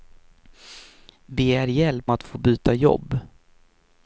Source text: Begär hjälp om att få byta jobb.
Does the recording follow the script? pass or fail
fail